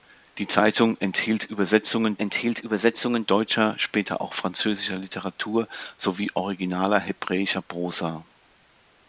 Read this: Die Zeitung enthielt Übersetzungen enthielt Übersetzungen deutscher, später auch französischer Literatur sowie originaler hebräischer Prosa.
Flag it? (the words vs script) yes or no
no